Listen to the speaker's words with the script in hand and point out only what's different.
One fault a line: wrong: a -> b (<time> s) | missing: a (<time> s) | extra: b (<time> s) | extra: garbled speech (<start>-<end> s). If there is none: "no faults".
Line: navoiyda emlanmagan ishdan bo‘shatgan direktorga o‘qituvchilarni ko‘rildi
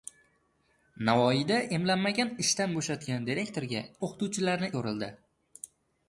no faults